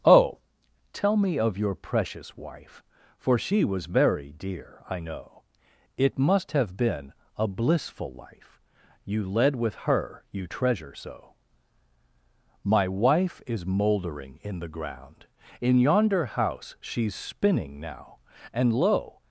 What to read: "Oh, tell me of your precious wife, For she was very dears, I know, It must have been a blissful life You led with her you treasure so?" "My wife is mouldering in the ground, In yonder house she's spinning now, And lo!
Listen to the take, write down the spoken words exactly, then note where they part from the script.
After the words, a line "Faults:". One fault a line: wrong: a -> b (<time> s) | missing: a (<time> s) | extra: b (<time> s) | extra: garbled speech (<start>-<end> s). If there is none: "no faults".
"Oh, tell me of your precious wife, For she was very dear, I know, It must have been a blissful life You led with her you treasure so?" "My wife is mouldering in the ground, In yonder house she's spinning now, And lo!
Faults:
wrong: dears -> dear (4.3 s)